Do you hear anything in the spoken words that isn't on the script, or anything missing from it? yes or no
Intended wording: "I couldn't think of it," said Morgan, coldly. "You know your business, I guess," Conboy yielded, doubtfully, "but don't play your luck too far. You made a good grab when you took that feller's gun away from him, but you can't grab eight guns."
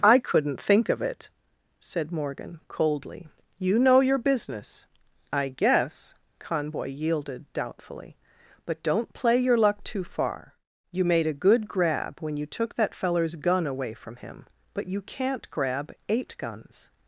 no